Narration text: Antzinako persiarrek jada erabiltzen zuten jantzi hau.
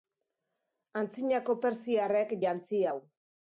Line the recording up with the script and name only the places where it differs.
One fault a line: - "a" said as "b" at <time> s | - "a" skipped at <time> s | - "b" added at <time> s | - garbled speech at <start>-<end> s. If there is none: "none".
- "jada erabiltzen zuten" skipped at 2.4 s